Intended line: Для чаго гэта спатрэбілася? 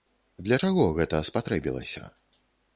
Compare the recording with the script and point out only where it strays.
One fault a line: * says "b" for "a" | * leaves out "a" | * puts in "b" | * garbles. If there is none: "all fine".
all fine